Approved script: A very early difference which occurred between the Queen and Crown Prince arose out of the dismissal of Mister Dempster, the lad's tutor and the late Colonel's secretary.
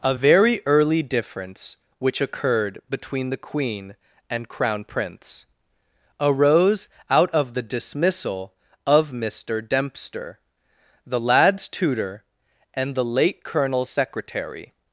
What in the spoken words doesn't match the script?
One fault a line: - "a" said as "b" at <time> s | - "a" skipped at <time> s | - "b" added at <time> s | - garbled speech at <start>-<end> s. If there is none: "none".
none